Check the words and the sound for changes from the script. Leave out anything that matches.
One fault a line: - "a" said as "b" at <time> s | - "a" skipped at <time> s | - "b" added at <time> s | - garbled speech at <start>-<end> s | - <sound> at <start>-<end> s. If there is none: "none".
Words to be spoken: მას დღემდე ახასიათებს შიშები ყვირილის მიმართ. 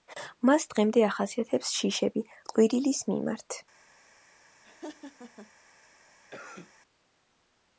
- laugh at 4.6-5.5 s
- cough at 6.3-6.7 s